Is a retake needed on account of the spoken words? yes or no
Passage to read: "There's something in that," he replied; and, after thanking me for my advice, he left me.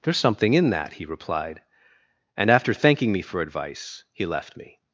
yes